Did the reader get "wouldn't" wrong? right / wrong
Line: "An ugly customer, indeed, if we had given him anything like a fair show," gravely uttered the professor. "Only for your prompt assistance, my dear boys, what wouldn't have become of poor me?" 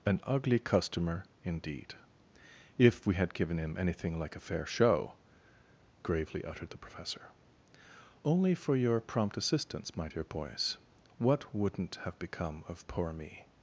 right